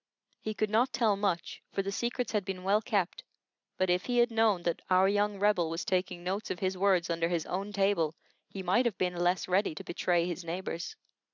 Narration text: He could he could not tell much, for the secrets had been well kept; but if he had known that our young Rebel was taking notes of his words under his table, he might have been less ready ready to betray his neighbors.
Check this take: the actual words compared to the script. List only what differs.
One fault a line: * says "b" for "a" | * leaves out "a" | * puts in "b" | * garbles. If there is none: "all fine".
* leaves out "he could"
* puts in "own"
* leaves out "ready"